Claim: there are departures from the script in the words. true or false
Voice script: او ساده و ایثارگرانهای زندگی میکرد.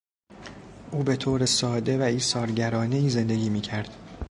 true